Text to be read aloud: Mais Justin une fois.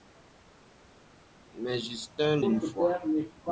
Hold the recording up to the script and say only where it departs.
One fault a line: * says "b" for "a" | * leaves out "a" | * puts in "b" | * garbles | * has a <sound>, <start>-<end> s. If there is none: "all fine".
all fine